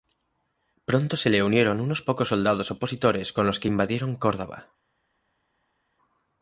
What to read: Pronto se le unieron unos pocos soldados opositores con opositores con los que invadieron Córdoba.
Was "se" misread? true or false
false